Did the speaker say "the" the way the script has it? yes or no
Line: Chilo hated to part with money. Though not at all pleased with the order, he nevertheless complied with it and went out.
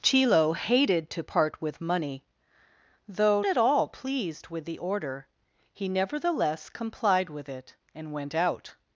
yes